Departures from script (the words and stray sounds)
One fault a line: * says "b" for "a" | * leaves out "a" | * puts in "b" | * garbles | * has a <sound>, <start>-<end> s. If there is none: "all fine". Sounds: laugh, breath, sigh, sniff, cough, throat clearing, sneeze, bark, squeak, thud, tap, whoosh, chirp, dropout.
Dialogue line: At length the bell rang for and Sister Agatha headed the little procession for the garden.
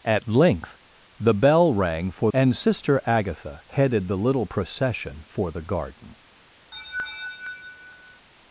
* has a laugh, 6.7-8.3 s